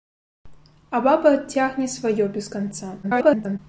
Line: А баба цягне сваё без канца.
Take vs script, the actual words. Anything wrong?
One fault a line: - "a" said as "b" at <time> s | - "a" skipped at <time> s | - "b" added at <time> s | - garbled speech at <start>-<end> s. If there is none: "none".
- garbled speech at 3.0-3.6 s